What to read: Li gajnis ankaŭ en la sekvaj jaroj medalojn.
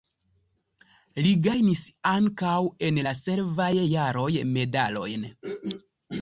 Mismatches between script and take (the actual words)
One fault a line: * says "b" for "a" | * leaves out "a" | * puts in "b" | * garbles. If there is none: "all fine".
all fine